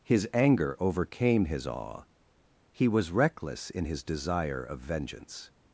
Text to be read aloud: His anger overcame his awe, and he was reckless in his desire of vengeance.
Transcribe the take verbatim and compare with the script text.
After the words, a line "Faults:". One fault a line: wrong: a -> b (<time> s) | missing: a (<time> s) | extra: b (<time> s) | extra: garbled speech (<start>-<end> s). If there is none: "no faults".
His anger overcame his awe, he was reckless in his desire of vengeance.
Faults:
missing: and (2.0 s)